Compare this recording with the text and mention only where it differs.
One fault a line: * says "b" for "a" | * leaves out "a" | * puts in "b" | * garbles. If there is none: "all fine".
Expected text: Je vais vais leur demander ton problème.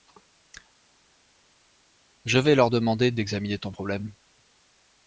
* leaves out "vais"
* puts in "d'examiner"